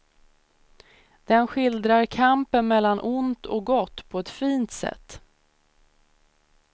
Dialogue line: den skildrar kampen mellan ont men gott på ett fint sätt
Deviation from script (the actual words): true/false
true